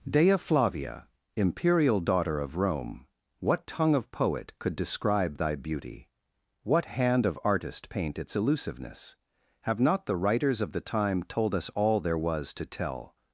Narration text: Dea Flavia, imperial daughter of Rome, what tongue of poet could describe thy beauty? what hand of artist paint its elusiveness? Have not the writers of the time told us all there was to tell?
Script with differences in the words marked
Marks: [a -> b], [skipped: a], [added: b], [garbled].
Dea Flavia, imperial daughter of Rome, what tongue of poet could describe thy beauty? what hand of artist paint its elusiveness? Have not the writers of the time told us all there was to tell?